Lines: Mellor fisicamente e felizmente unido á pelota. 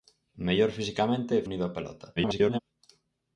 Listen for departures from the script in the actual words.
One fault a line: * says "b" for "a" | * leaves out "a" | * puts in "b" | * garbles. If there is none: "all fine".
* leaves out "felizmente"
* garbles